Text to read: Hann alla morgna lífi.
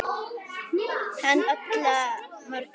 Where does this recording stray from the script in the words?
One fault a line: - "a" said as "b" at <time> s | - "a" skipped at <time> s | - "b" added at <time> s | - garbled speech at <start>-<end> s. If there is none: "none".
none